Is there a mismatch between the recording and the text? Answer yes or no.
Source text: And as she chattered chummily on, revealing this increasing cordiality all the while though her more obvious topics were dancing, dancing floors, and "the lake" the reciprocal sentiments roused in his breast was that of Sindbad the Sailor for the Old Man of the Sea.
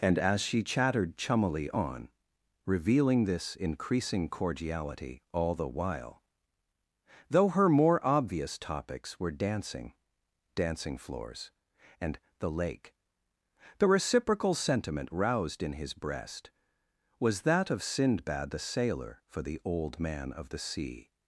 yes